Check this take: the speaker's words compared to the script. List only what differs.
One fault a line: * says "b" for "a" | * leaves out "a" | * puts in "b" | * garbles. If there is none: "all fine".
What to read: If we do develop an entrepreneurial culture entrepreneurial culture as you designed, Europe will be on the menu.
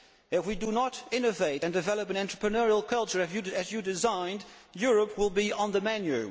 * puts in "not innovate and"
* leaves out "entrepreneurial culture"